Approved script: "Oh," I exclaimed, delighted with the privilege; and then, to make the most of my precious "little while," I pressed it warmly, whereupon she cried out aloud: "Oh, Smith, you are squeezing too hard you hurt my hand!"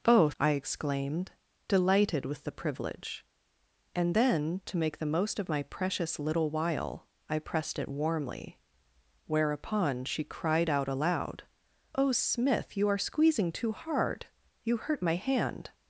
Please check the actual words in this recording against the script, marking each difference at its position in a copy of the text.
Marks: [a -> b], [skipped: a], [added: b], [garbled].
"Oh," I exclaimed, delighted with the privilege; and then, to make the most of my precious "little while," I pressed it warmly, whereupon she cried out aloud: "Oh, Smith, you are squeezing too hard you hurt my hand!"